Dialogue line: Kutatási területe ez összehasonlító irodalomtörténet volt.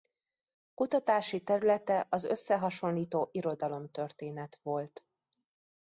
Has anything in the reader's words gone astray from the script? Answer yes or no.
yes